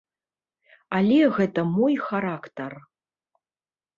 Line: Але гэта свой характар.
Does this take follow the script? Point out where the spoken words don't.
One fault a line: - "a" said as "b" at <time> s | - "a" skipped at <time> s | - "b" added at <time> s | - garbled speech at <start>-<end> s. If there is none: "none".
- "свой" said as "мой" at 1.8 s